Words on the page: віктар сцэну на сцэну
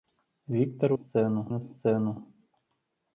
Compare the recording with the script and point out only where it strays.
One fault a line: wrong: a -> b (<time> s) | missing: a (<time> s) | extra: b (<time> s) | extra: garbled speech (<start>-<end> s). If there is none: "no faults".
no faults